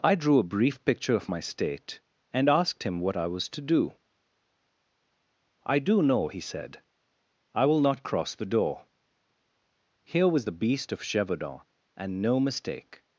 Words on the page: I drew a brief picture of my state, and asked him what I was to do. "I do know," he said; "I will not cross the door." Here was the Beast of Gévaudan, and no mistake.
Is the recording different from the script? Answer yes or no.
no